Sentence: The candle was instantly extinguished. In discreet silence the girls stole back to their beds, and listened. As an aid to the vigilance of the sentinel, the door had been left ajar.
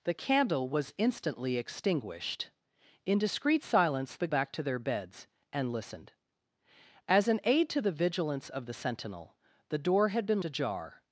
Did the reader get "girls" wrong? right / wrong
wrong